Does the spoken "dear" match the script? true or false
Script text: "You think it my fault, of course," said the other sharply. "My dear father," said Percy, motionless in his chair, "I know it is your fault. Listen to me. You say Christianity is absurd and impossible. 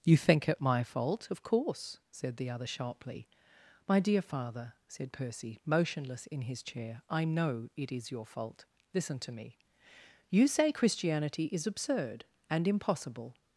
true